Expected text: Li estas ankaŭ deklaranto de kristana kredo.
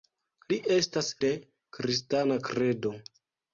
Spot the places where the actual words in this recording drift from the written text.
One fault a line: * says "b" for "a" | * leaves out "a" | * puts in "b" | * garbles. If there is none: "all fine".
* leaves out "ankaŭ deklaranto"